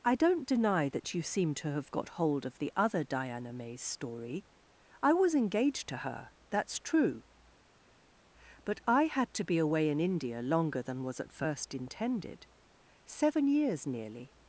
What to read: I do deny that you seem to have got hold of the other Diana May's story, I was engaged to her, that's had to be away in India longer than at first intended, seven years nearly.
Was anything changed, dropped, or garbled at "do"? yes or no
yes